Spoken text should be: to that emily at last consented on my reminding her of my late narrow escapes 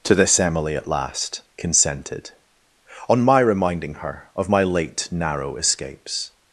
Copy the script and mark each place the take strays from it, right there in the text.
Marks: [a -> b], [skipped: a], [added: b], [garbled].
to [that -> this] emily at last consented on my reminding her of my late narrow escapes